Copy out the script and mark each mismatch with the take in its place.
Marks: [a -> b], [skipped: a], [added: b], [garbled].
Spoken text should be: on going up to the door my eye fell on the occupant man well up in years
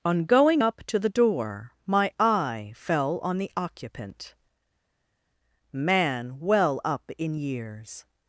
on going up to the door my eye fell on the occupant man well up in years